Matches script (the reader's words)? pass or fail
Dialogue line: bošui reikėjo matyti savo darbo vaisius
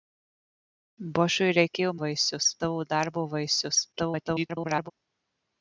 fail